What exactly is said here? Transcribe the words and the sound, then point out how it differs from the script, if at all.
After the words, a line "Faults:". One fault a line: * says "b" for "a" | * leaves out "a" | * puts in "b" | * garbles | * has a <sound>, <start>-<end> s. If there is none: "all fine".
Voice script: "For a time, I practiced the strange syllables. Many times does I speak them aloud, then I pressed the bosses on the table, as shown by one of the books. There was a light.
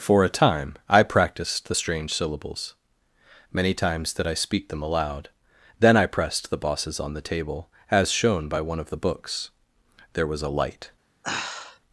"For a time, I practiced the strange syllables. Many times did I speak them aloud, then I pressed the bosses on the table, as shown by one of the books. There was a light.
Faults:
* says "did" for "does"
* has a sigh, 11.2-11.8 s